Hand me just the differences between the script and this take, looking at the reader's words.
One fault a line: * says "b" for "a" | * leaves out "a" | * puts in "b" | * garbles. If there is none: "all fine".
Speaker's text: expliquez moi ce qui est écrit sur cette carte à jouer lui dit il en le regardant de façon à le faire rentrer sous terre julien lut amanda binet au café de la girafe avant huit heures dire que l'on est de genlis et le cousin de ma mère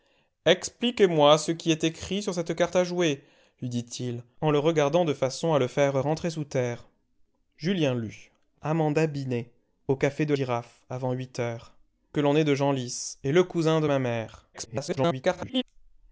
* leaves out "la"
* leaves out "dire"
* garbles